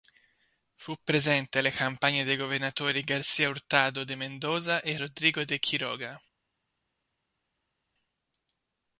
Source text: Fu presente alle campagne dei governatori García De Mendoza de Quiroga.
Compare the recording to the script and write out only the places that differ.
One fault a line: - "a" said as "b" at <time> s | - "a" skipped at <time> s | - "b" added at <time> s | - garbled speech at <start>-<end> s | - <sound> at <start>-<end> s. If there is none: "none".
- "Hurtado" added at 3.5 s
- "e Rodrigo" added at 4.8 s